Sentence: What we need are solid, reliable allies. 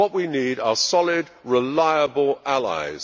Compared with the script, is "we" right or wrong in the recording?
right